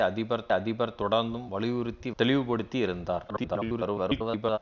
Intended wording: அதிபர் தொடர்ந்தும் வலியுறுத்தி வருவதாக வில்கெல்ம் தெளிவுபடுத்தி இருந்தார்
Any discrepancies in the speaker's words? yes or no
yes